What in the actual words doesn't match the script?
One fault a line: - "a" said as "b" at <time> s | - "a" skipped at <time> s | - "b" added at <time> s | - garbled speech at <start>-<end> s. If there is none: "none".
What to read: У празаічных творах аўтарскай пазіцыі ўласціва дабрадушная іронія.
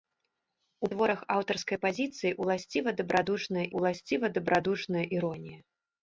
- "празаічных" skipped at 0.9 s
- "ўласціва дабрадушная" added at 3.8 s